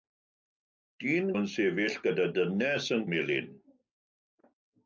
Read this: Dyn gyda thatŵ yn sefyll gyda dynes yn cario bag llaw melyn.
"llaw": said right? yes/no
no